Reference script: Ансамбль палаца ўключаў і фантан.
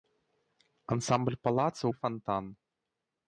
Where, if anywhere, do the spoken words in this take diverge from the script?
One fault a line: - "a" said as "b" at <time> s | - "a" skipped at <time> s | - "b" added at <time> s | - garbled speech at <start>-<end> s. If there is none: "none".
- "ўключаў" skipped at 1.8 s